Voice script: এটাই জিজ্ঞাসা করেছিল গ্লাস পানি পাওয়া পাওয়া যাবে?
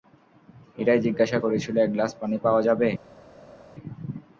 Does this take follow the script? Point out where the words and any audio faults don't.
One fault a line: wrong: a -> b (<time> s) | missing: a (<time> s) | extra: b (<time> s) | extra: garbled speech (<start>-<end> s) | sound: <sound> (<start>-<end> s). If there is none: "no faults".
extra: এক (1.8 s)
missing: পাওয়া (2.6 s)